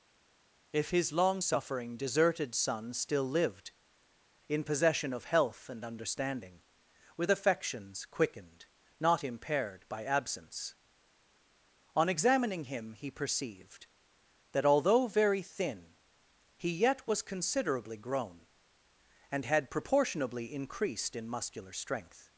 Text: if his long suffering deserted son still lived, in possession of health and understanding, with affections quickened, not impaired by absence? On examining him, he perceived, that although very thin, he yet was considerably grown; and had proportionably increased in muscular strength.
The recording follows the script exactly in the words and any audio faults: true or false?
true